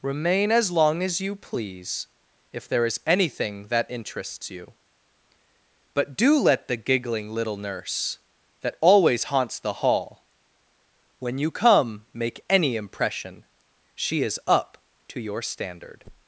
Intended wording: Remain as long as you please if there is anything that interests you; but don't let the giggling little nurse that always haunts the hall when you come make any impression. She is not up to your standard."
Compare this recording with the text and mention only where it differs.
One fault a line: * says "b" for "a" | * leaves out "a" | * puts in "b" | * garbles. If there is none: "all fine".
* says "do" for "don't"
* leaves out "not"